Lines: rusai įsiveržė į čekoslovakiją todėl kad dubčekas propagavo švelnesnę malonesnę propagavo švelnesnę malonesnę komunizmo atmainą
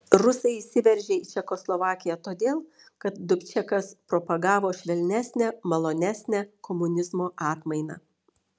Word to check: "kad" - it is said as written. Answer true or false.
true